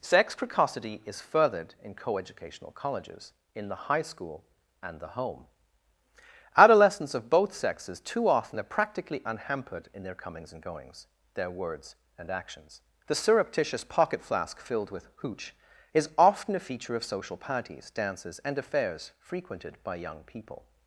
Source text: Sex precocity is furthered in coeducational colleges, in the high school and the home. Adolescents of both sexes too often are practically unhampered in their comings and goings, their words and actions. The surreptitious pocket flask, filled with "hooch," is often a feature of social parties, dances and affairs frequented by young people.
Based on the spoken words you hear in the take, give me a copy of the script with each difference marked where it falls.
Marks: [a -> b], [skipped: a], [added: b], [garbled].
Sex precocity is furthered in coeducational colleges, in the high school and the home. Adolescents of both sexes too often are practically unhampered in their comings and goings, their words and actions. The surreptitious pocket flask, filled with "hooch," is often a feature of social parties, dances and affairs frequented by young people.